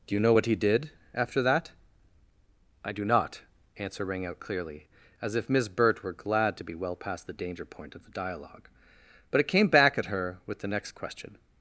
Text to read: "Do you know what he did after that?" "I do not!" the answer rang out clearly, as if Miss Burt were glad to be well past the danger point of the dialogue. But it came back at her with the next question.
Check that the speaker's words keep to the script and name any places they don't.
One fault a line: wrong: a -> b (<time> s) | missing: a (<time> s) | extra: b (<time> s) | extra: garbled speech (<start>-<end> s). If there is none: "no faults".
missing: the (3.4 s)